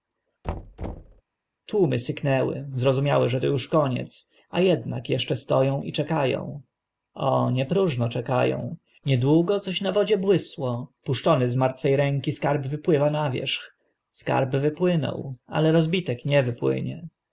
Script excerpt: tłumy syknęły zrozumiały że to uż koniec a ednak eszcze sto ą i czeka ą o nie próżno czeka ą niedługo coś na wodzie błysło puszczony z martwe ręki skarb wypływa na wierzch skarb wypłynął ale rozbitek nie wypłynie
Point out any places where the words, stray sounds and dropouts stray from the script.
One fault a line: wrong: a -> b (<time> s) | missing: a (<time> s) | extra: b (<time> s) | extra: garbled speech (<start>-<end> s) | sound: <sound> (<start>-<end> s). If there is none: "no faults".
sound: thud (0.4-1.2 s)